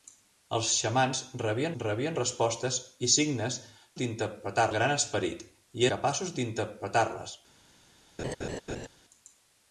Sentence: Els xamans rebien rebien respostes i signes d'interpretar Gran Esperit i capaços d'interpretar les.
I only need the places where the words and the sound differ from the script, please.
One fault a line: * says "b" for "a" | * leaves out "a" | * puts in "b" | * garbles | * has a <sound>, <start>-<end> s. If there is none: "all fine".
* has a laugh, 8.2-8.9 s